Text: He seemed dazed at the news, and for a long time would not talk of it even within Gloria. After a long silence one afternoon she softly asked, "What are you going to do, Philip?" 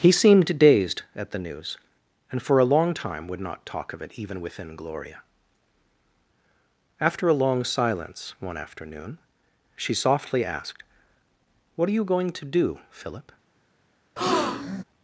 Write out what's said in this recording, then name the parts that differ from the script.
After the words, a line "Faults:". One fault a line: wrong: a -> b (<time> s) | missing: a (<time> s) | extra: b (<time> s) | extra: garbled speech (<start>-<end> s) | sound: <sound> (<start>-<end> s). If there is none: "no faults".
He seemed dazed at the news, and for a long time would not talk of it even within Gloria. After a long silence one afternoon she softly asked, "What are you going to do, Philip?"
Faults:
sound: breath (14.2-14.8 s)